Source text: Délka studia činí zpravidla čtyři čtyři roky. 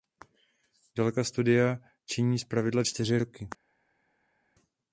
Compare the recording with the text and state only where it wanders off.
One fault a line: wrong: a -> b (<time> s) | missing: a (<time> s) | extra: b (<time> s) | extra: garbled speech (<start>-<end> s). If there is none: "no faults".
missing: čtyři (3.2 s)